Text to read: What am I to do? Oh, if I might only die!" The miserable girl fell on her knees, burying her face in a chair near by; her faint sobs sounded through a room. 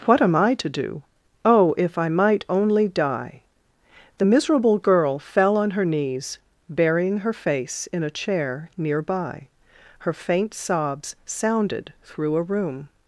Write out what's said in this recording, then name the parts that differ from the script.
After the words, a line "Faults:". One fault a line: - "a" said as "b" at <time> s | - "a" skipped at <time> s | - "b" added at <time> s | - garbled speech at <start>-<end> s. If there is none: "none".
What am I to do? Oh, if I might only die!" The miserable girl fell on her knees, burying her face in a chair near by; her faint sobs sounded through a room.
Faults:
none